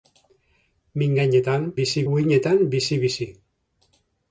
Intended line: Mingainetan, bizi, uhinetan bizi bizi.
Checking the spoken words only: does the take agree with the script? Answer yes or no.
yes